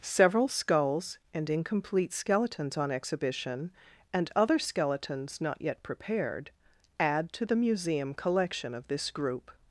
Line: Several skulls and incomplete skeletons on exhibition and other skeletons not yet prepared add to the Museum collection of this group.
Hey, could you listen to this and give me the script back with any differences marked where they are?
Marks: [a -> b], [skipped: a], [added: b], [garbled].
Several skulls and incomplete skeletons on exhibition and other skeletons not yet prepared add to the Museum collection of this group.